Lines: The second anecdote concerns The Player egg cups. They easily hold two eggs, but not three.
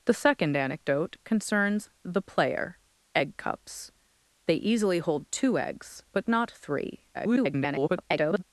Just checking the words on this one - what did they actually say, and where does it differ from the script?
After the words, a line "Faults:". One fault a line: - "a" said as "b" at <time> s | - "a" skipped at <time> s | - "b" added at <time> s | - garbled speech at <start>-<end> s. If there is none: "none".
The second anecdote concerns The Player egg cups. They easily hold two eggs, but not three. [garbled]
Faults:
- garbled speech at 7.1-8.4 s